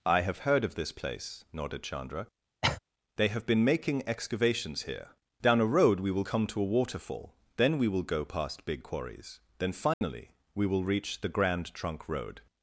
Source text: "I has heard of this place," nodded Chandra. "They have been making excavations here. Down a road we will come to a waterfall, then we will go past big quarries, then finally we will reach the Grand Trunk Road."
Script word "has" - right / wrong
wrong